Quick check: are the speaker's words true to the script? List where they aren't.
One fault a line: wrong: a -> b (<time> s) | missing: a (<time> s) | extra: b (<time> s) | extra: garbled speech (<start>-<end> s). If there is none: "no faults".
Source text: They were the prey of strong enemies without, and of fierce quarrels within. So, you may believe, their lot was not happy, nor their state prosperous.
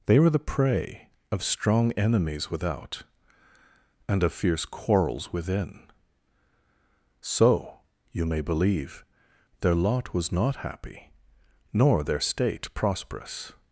no faults